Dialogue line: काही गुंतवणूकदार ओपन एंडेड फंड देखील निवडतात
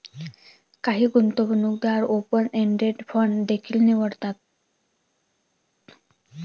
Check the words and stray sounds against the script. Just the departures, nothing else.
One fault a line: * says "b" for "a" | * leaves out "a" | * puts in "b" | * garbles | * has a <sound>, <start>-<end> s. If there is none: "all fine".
all fine